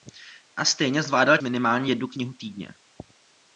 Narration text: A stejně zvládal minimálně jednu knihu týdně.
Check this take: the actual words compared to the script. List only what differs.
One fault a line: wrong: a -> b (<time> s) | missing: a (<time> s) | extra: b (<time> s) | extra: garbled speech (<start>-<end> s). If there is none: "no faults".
no faults